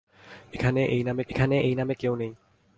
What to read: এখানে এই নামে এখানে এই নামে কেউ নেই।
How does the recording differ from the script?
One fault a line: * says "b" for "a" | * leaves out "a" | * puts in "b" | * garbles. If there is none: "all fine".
all fine